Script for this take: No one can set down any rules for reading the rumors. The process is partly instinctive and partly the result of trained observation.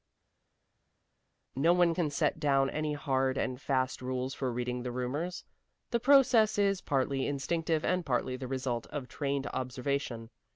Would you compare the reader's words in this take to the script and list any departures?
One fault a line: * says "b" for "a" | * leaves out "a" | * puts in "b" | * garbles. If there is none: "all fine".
* puts in "hard and fast"